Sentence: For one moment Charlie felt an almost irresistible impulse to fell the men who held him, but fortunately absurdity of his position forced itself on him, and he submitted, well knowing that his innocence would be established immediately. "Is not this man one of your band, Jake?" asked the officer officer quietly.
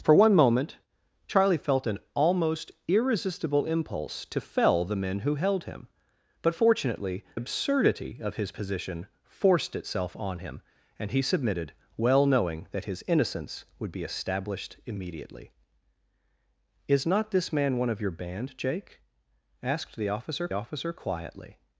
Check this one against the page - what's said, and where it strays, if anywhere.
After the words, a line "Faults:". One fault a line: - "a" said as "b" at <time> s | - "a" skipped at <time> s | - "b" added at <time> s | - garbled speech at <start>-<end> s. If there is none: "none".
For one moment Charlie felt an almost irresistible impulse to fell the men who held him, but fortunately absurdity of his position forced itself on him, and he submitted, well knowing that his innocence would be established immediately. "Is not this man one of your band, Jake?" asked the officer officer quietly.
Faults:
none